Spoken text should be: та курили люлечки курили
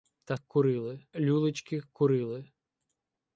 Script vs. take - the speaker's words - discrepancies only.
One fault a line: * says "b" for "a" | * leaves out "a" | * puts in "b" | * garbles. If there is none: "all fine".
all fine